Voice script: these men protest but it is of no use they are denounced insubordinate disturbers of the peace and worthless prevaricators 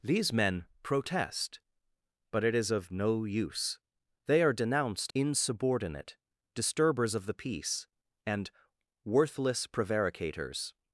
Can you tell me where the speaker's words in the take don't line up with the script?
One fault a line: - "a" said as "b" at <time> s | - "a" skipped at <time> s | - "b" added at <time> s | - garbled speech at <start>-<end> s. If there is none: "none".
none